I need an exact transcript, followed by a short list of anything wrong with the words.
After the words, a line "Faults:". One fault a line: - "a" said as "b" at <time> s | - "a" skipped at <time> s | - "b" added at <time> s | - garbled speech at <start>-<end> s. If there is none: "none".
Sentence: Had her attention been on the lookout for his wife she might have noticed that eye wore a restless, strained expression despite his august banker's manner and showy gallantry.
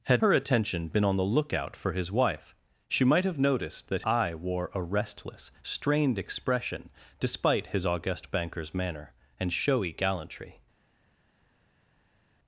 Had her attention been on the lookout for his wife she might have noticed that eye wore a restless, strained expression despite his august banker's manner and showy gallantry.
Faults:
none